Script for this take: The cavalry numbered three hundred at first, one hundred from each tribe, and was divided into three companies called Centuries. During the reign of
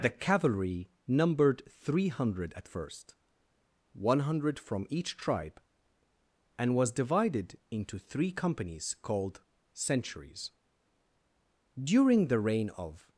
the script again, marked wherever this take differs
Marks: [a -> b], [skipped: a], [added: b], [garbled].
The cavalry numbered three hundred at first, one hundred from each tribe, and was divided into three companies called Centuries. During the reign of